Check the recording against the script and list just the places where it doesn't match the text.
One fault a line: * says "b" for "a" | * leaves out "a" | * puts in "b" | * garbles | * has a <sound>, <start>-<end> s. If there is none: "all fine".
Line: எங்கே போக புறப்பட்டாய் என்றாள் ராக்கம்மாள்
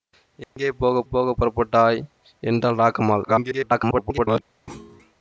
* has a dropout, 0.4-0.6 s
* puts in "போக"
* garbles
* has a thud, 4.7-5.1 s